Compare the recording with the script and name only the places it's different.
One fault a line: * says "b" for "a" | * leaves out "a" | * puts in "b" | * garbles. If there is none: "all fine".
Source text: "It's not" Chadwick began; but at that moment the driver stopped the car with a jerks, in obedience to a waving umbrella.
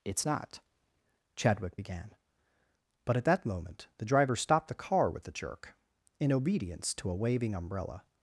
* says "jerk" for "jerks"